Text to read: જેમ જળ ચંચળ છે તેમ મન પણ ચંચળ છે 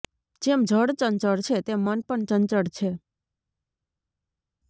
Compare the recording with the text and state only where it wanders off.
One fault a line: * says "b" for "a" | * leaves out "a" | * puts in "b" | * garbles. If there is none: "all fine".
all fine